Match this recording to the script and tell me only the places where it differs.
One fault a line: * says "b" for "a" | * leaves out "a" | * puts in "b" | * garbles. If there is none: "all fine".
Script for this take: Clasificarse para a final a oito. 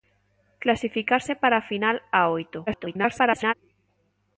* garbles